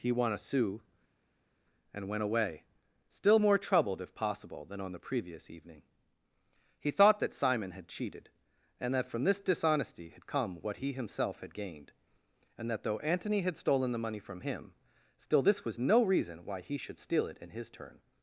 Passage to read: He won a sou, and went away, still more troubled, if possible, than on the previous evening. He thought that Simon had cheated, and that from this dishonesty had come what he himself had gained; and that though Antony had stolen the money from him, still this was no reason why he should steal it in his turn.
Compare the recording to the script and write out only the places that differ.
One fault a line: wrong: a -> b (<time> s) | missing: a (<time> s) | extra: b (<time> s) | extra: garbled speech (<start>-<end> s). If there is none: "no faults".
no faults